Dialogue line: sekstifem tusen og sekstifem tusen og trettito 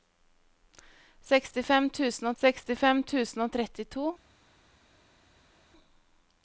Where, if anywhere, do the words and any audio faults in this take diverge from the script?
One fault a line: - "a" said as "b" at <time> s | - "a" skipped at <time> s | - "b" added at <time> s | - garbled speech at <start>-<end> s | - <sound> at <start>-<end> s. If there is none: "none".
none